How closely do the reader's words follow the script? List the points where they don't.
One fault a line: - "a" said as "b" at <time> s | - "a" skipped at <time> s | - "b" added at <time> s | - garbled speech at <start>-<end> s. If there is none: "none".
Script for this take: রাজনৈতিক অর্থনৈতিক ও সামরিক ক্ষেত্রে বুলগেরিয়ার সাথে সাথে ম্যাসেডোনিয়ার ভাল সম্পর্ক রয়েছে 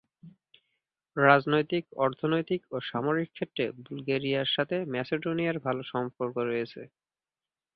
- "সাথে" skipped at 4.8 s